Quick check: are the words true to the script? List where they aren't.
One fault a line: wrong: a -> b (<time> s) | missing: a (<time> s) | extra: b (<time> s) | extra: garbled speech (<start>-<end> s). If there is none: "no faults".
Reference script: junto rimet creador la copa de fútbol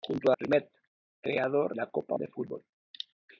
no faults